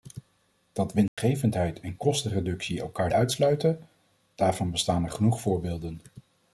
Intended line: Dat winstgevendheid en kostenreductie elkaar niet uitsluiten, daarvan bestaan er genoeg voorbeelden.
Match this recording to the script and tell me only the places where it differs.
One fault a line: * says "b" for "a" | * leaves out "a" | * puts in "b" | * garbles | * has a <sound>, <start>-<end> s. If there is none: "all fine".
* has a dropout, 1.1-1.2 s
* leaves out "niet"